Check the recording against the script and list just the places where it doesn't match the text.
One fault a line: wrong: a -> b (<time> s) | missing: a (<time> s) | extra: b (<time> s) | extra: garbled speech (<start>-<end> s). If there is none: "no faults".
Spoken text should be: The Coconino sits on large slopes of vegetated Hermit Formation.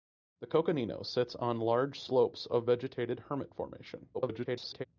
extra: garbled speech (4.1-4.8 s)